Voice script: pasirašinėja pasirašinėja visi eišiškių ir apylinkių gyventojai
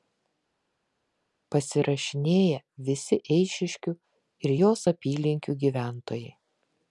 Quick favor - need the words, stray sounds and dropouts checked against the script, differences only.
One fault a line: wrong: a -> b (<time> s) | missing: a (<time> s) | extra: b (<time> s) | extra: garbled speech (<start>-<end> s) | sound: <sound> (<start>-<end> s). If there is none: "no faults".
missing: pasirašinėja (2.6 s)
extra: jos (4.6 s)